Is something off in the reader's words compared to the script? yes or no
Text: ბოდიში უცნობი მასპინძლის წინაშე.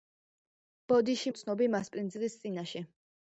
no